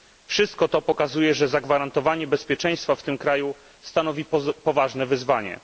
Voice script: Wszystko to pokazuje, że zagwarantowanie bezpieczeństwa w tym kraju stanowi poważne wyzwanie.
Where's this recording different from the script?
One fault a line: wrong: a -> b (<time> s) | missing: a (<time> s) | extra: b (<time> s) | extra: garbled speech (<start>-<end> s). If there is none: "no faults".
no faults